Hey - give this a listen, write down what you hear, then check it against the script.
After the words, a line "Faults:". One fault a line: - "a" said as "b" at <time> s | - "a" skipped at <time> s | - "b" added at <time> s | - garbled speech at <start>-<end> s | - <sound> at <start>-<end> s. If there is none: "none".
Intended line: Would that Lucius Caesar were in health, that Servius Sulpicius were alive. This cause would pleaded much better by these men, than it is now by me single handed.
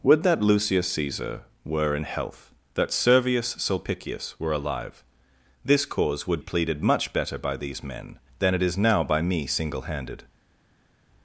Would that Lucius Caesar were in health, that Servius Sulpicius were alive. This cause would pleaded much better by these men, than it is now by me single handed.
Faults:
none